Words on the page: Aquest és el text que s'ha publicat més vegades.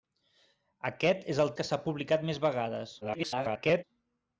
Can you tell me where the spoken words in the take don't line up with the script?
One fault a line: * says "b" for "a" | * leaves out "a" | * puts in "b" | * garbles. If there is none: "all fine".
* leaves out "text"
* garbles